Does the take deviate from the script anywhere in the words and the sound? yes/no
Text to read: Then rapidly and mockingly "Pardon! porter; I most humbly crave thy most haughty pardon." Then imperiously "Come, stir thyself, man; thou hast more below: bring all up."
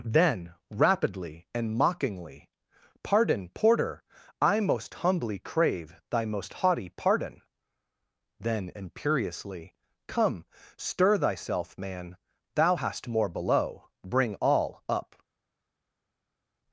no